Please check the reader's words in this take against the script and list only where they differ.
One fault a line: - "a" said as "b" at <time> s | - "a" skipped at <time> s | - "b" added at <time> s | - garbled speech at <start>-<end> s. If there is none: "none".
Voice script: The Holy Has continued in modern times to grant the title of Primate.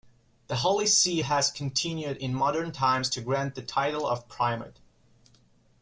- "See" added at 0.9 s